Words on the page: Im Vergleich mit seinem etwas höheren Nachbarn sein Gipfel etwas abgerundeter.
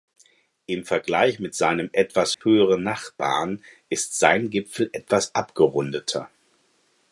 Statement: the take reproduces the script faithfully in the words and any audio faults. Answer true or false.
false